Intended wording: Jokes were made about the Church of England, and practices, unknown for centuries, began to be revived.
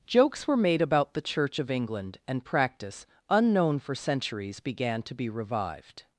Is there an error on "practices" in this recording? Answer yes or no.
yes